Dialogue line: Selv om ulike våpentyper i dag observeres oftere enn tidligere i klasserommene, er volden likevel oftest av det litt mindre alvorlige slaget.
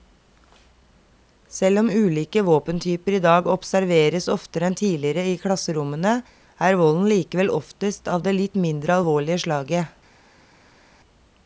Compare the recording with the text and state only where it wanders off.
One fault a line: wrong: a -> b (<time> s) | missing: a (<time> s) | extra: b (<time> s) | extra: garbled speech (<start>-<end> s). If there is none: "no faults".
no faults